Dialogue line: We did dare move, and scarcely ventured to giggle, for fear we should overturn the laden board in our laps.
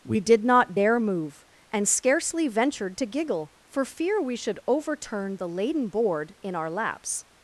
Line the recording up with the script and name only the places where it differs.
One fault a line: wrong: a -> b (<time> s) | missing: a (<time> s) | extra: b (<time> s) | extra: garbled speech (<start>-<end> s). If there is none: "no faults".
extra: not (0.4 s)